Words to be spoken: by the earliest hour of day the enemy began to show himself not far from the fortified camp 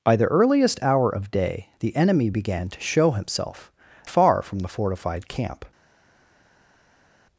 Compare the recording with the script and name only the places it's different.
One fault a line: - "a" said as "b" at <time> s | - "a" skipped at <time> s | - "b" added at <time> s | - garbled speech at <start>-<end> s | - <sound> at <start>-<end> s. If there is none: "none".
- "not" skipped at 3.7 s